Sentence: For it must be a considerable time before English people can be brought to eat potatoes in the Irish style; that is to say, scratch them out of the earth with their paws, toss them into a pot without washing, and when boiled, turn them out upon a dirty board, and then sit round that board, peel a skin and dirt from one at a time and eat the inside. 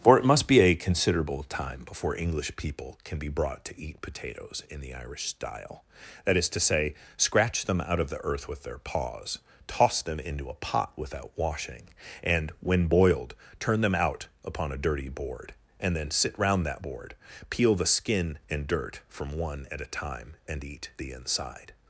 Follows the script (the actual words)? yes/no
no